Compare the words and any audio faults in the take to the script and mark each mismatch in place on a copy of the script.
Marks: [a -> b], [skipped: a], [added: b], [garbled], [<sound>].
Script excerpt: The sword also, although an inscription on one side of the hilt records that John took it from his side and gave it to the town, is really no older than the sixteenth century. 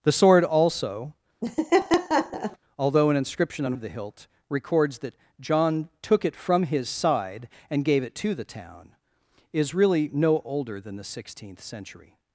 The sword also, [laugh] although an inscription on [skipped: one side] of the hilt records that John took it from his side and gave it to the town, is really no older than the sixteenth century.